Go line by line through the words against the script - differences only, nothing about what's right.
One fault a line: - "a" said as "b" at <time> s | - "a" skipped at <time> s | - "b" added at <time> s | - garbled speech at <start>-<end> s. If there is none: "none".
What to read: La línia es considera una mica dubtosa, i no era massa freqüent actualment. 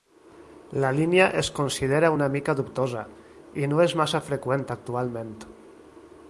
- "era" said as "és" at 3.9 s